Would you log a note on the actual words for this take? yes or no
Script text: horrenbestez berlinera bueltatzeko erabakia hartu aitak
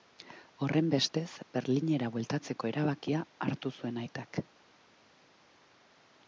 yes